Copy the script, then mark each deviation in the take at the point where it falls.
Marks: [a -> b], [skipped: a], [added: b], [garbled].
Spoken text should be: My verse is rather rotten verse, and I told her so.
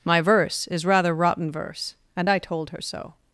My verse is rather rotten verse, and I told her so.